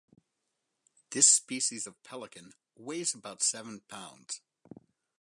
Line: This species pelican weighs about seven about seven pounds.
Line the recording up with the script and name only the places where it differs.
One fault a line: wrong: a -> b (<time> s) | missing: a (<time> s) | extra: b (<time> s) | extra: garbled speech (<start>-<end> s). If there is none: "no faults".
extra: of (1.8 s)
missing: about seven (3.8 s)